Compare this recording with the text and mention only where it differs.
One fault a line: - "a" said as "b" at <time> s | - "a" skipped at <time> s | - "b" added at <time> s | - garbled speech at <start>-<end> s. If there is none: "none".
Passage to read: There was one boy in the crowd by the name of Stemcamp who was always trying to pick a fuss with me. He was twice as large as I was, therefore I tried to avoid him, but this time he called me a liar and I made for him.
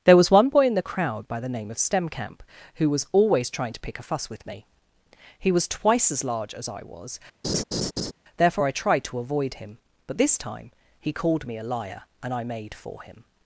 none